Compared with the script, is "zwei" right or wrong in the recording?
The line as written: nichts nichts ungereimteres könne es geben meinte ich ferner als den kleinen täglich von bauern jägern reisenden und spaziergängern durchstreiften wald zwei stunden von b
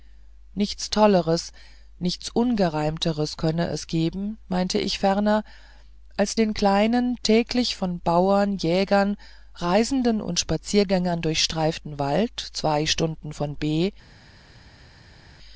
right